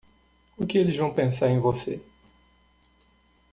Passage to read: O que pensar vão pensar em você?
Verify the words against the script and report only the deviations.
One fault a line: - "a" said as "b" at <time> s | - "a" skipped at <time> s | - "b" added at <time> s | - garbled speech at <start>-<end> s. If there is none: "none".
- "pensar" said as "eles" at 0.8 s